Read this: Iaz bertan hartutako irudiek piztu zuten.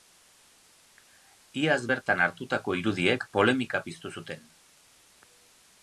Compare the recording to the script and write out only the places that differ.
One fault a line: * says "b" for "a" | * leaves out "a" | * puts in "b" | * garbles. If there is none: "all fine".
* puts in "polemika"